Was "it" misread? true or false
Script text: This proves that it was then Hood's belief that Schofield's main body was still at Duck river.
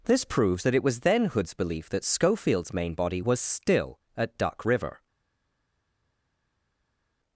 false